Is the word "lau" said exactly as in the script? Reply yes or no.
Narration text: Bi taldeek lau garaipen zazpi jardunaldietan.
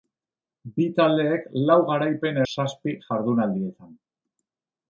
yes